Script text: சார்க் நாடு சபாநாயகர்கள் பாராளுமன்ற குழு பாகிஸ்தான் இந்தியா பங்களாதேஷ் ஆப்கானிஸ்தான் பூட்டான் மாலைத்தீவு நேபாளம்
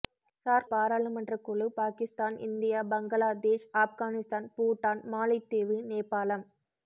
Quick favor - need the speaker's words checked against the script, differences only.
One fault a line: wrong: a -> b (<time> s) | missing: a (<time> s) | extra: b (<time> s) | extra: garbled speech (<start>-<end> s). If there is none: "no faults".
missing: நாடு சபாநாயகர்கள் (0.7 s)